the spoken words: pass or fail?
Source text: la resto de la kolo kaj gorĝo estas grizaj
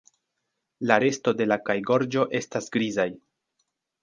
fail